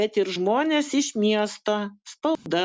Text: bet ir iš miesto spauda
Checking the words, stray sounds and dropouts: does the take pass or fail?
fail